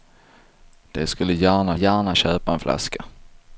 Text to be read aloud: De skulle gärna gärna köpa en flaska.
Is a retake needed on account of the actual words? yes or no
no